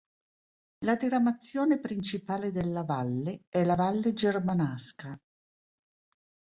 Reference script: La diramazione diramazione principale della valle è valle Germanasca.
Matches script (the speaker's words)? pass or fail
fail